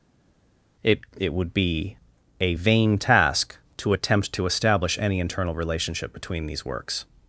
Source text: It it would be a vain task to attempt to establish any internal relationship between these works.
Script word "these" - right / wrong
right